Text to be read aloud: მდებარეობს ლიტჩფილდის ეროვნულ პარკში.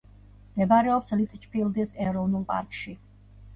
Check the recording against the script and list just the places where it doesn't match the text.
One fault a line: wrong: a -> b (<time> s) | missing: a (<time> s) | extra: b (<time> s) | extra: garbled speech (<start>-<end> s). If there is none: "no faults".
no faults